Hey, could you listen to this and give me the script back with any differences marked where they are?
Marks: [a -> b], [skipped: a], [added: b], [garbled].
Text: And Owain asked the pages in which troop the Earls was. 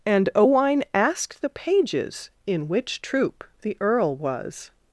And Owain asked the pages in which troop the [Earls -> Earl] was.